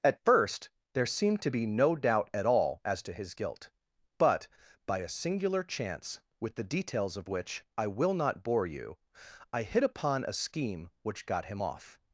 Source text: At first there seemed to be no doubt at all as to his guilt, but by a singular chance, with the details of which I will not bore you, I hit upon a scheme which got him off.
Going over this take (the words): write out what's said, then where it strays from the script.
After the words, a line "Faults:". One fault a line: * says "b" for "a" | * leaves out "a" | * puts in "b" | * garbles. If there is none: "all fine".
At first there seemed to be no doubt at all as to his guilt, but by a singular chance, with the details of which I will not bore you, I hit upon a scheme which got him off.
Faults:
all fine